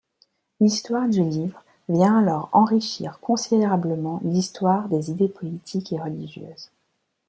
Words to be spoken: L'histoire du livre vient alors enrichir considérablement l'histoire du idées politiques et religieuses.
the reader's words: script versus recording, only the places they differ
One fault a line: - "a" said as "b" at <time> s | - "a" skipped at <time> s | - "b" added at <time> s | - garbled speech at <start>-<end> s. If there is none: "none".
- "du" said as "des" at 4.9 s